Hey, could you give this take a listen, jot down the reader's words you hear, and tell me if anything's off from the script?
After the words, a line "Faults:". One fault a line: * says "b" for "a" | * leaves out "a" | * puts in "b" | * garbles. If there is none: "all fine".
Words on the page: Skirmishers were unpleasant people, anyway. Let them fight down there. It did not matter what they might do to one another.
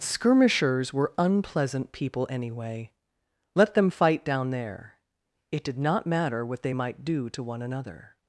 Skirmishers were unpleasant people, anyway. Let them fight down there. It did not matter what they might do to one another.
Faults:
all fine